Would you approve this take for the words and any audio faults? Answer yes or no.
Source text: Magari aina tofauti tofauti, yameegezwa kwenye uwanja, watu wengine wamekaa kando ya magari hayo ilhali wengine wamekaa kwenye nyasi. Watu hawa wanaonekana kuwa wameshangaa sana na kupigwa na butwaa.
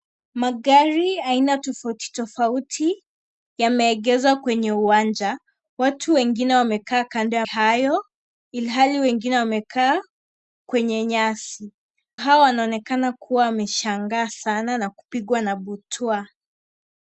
no